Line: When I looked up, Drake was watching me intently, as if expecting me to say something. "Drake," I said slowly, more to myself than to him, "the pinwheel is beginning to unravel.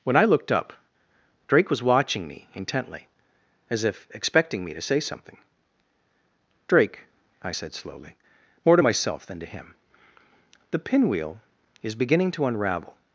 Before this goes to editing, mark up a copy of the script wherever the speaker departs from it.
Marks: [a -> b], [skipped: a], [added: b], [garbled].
When I looked up, Drake was watching me intently, as if expecting me to say something. "Drake," I said slowly, more to myself than to him, "the pinwheel is beginning to unravel.